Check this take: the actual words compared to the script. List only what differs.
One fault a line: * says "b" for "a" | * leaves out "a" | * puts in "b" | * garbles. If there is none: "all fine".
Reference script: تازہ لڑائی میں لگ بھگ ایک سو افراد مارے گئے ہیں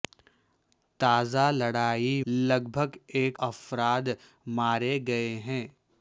* leaves out "میں"
* leaves out "سو"